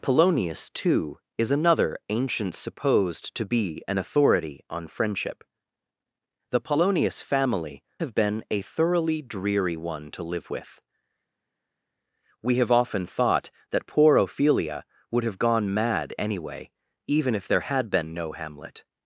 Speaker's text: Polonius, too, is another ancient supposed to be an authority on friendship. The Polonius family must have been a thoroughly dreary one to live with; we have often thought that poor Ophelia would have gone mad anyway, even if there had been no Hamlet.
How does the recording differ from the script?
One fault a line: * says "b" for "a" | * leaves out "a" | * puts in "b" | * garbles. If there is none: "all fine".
* leaves out "must"